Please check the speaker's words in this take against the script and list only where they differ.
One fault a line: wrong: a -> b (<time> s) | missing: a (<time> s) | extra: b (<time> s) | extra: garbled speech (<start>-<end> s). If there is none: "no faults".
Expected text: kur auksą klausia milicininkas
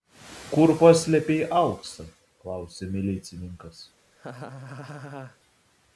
extra: paslėpei (0.8 s)